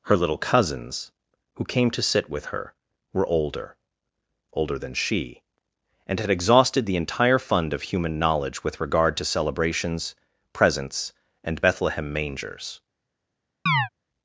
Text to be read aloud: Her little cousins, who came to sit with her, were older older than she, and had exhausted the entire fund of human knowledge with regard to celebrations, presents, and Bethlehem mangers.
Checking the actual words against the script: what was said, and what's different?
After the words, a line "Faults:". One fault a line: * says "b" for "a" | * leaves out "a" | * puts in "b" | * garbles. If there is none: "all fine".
Her little cousins, who came to sit with her, were older older than she, and had exhausted the entire fund of human knowledge with regard to celebrations, presents, and Bethlehem mangers.
Faults:
all fine